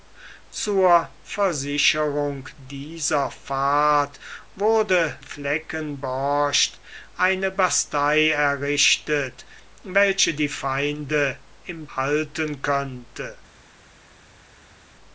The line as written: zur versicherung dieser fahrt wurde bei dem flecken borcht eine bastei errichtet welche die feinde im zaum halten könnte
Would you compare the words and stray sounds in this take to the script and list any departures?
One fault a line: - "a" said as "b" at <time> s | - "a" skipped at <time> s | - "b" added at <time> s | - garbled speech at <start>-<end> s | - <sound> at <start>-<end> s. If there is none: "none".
- "bei dem" skipped at 5.2 s
- "zaum" skipped at 11.9 s